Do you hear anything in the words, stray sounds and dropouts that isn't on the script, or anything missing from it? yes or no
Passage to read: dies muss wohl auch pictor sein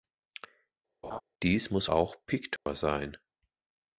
yes